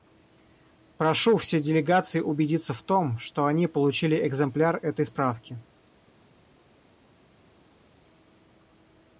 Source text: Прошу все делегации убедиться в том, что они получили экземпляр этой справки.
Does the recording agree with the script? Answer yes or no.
yes